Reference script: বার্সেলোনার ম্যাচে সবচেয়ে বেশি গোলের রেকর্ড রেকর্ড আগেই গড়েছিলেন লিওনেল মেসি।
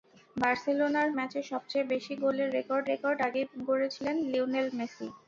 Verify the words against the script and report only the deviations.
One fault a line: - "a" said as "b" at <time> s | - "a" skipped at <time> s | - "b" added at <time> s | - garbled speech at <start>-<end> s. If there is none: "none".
none